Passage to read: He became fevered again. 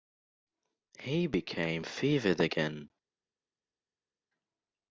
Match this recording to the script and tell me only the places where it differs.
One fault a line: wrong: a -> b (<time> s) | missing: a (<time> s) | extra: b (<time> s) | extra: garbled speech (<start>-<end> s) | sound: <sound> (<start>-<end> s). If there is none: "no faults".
no faults